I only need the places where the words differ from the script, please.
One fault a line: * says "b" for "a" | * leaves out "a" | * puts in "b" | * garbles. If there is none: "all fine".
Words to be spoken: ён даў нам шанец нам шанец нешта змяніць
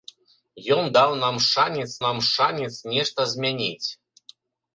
all fine